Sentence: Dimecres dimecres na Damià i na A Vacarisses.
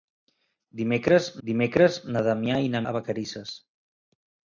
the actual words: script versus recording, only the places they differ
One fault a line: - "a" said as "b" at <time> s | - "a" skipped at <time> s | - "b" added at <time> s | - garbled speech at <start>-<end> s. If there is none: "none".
none